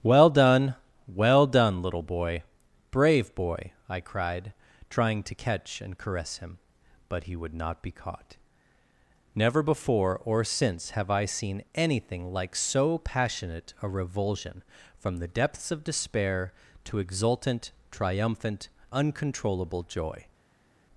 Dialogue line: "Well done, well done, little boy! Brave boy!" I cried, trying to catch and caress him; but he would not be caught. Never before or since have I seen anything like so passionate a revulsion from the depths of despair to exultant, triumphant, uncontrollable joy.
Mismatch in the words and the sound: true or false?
false